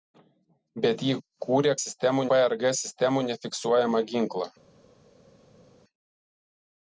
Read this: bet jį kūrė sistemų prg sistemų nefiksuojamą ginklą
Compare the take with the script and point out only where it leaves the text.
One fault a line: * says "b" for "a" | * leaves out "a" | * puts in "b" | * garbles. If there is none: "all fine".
all fine